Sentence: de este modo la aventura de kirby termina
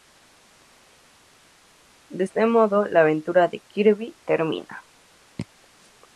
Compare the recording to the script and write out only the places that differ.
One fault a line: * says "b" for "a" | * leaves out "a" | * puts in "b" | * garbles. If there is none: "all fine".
all fine